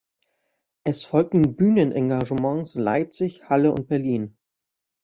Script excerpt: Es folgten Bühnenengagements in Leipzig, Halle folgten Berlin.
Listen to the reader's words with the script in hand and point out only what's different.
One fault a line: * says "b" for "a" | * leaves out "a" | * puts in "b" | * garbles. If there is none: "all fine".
* says "und" for "folgten"